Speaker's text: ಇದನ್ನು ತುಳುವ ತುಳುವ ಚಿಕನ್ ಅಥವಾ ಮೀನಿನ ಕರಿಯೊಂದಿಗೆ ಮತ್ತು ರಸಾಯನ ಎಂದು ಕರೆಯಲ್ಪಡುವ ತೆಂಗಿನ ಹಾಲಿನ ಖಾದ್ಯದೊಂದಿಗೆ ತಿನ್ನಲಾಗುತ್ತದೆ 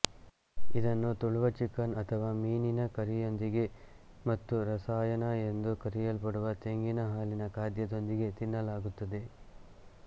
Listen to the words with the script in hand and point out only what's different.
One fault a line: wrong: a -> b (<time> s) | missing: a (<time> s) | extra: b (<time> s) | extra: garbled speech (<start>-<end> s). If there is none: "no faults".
missing: ತುಳುವ (1.5 s)